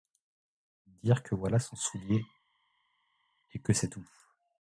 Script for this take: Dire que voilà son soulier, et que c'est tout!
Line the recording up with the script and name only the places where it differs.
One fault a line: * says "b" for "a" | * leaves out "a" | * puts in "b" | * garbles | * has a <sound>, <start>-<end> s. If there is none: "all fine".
all fine